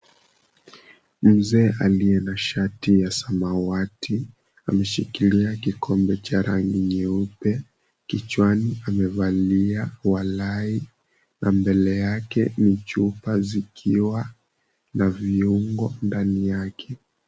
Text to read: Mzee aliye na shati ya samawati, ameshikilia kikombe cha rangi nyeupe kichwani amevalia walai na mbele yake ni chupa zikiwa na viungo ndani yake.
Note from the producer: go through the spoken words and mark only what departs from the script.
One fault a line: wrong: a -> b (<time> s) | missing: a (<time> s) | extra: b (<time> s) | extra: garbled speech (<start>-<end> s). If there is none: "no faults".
no faults